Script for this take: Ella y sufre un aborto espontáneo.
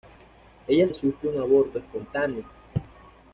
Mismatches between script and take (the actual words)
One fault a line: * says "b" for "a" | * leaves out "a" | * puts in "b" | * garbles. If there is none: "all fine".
all fine